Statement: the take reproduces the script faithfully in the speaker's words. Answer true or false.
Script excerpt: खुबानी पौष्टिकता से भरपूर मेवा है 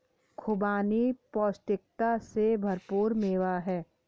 true